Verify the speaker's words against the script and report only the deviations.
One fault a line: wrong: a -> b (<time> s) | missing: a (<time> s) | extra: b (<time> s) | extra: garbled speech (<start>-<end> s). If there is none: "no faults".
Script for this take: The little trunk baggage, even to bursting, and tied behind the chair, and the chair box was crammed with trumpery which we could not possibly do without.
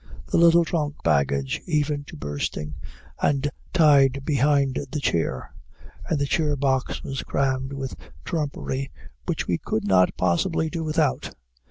no faults